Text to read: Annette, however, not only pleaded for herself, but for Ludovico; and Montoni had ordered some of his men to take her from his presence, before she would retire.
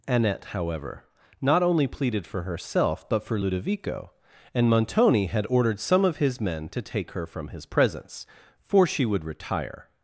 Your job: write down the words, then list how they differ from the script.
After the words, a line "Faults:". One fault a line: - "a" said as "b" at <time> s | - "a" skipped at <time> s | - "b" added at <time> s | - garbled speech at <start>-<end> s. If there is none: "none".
Annette, however, not only pleaded for herself, but for Ludovico; and Montoni had ordered some of his men to take her from his presence, for she would retire.
Faults:
- "before" said as "for" at 8.6 s